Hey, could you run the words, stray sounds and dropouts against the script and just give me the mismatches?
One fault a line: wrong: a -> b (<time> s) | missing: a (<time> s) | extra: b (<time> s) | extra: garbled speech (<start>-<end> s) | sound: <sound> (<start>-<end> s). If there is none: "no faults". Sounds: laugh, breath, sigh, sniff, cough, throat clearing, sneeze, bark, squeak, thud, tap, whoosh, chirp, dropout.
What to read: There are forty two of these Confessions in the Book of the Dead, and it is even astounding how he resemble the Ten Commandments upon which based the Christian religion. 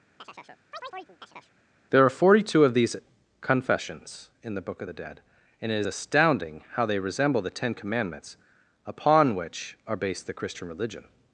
sound: chirp (0.2-1.6 s)
missing: even (5.9 s)
wrong: he -> they (6.9 s)
extra: are (9.9 s)